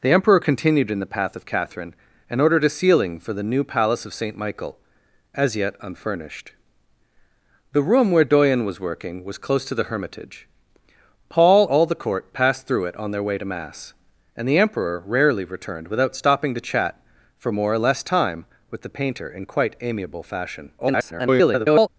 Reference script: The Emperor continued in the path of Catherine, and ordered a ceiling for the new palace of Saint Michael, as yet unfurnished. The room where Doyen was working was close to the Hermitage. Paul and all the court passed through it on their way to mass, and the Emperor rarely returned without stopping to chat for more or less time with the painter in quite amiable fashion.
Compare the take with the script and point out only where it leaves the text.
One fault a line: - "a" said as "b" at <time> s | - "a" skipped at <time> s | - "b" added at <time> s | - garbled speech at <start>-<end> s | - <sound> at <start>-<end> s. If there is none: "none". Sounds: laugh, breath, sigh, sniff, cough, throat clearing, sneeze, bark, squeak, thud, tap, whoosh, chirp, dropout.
- "and" skipped at 11.7 s
- garbled speech at 20.8-21.9 s